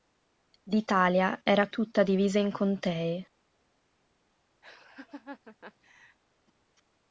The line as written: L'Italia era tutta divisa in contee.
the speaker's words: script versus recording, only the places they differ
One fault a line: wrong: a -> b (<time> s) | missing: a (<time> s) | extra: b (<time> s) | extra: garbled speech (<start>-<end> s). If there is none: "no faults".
no faults